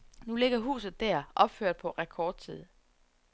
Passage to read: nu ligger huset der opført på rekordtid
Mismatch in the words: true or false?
false